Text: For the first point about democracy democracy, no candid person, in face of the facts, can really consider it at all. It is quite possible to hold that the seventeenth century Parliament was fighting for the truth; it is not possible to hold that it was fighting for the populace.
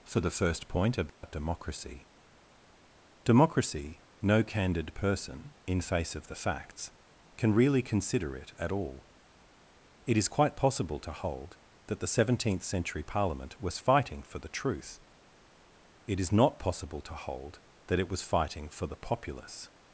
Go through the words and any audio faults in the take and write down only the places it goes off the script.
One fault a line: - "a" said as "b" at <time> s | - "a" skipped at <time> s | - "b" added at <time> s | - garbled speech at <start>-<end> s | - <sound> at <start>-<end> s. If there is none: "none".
- dropout at 1.1-1.2 s